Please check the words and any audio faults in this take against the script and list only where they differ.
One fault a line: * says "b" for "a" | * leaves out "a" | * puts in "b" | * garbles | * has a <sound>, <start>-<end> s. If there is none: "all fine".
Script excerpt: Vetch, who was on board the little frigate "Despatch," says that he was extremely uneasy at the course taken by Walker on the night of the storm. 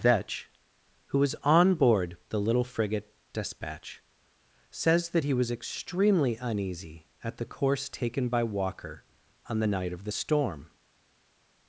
all fine